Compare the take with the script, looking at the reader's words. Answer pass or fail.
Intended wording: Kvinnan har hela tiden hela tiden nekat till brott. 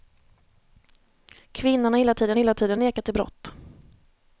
pass